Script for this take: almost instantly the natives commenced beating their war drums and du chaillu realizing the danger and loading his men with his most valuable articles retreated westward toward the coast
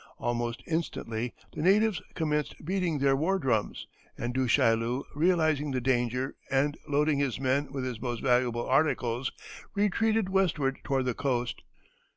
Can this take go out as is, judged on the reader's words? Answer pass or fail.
pass